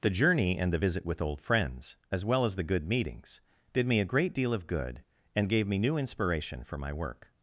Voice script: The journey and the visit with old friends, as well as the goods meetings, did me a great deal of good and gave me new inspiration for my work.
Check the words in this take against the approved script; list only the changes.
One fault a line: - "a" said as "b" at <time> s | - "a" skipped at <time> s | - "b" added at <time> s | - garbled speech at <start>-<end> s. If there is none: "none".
- "goods" said as "good" at 2.6 s